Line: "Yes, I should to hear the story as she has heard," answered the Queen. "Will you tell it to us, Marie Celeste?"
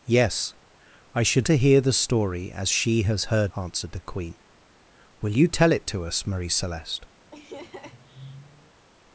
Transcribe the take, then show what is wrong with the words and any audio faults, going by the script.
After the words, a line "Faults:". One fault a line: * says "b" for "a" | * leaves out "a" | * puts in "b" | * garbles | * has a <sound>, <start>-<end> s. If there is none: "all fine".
"Yes, I should to hear the story as she has heard," answered the Queen. "Will you tell it to us, Marie Celeste?"
Faults:
* has a laugh, 7.3-8.9 s